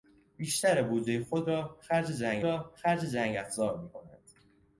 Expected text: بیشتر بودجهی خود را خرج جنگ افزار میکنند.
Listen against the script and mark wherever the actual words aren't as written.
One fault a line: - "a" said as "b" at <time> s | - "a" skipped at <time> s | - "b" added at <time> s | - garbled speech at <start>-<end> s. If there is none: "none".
- "را خرج جنگ" added at 2.4 s